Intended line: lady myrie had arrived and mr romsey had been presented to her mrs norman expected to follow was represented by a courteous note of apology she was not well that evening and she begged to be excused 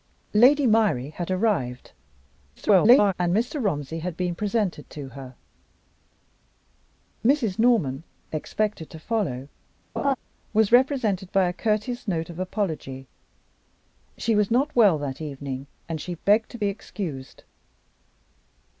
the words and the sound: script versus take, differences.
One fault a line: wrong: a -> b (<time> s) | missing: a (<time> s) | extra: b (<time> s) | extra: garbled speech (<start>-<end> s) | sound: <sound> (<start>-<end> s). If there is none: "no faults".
extra: garbled speech (2.6-3.1 s)
sound: laugh (10.0-10.2 s)